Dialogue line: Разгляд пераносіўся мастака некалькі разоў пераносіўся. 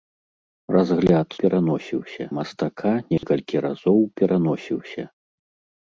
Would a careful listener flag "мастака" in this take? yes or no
no